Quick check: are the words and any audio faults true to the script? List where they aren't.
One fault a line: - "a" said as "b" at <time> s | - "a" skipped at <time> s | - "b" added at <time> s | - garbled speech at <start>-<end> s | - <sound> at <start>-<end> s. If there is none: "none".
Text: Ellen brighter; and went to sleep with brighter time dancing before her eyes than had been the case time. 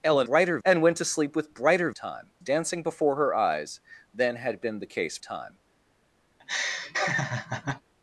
- laugh at 6.4-7.8 s